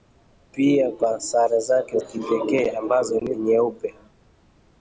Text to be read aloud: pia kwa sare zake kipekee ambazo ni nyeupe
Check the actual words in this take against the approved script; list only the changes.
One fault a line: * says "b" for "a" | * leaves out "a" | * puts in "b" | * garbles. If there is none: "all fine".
all fine